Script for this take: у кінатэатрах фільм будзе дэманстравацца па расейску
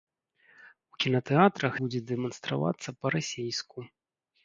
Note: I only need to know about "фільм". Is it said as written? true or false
false